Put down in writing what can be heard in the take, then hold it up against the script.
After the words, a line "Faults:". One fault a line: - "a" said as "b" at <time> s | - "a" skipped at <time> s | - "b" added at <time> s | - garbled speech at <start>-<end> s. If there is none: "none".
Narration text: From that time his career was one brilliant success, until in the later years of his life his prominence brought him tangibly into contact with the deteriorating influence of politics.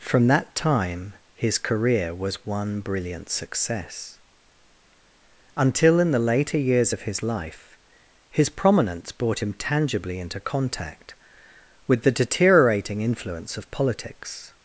From that time his career was one brilliant success, until in the later years of his life his prominence brought him tangibly into contact with the deteriorating influence of politics.
Faults:
none